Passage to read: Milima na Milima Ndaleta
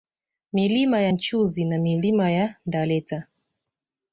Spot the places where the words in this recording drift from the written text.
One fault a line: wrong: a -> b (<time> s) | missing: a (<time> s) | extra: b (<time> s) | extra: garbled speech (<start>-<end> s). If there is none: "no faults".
extra: ya Nchuzi (1.0 s)
extra: ya (2.3 s)